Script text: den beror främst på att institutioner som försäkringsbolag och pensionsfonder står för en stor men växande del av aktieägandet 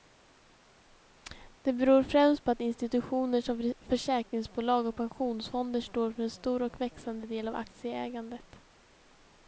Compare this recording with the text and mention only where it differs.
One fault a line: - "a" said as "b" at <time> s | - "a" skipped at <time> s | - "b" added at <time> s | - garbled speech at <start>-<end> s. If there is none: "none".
- "den" said as "det" at 1.6 s
- "men" said as "och" at 6.6 s